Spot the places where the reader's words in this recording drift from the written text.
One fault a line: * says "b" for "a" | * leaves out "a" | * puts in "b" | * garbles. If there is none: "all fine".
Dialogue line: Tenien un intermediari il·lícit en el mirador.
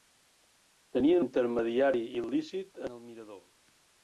* leaves out "un"